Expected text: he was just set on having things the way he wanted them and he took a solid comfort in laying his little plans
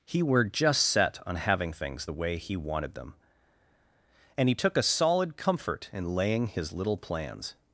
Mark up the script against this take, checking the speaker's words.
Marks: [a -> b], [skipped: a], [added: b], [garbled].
he [was -> were] just set on having things the way he wanted them and he took a solid comfort in laying his little plans